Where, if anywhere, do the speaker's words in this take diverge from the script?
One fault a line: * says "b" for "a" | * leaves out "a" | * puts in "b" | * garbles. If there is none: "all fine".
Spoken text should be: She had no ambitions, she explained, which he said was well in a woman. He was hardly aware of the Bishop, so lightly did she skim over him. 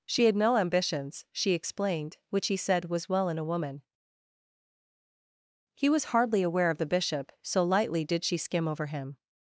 all fine